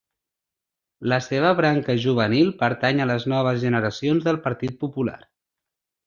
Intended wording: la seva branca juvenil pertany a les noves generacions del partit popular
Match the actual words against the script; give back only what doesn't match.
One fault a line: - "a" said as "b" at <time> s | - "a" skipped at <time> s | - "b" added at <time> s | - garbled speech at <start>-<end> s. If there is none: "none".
none